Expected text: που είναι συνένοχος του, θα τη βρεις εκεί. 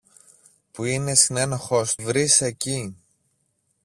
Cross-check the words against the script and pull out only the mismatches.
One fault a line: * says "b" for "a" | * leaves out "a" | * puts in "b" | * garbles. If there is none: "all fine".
* leaves out "του θα τη"